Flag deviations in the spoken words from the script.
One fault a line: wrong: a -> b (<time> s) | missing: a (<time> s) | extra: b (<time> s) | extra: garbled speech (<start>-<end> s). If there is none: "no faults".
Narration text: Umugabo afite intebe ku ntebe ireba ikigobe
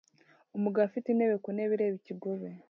no faults